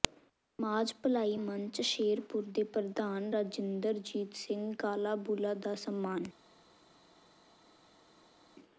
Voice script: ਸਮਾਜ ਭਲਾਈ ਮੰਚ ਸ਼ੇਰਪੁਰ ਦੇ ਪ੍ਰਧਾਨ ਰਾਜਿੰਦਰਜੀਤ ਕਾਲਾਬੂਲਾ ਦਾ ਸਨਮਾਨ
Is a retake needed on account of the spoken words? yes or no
yes